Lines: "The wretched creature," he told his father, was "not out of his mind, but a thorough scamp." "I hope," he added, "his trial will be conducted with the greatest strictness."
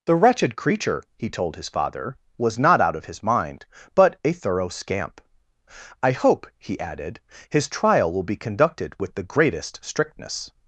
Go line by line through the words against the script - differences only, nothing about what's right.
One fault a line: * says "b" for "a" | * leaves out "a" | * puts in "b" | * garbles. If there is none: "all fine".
all fine